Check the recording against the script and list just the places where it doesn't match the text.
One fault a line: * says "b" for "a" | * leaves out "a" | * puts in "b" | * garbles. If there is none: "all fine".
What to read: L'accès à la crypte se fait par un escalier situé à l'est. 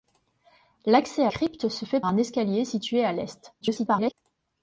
* leaves out "la"
* leaves out "par"
* garbles